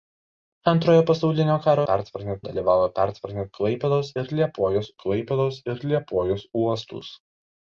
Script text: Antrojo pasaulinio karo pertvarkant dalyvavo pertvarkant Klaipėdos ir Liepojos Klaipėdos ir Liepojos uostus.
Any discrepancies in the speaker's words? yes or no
no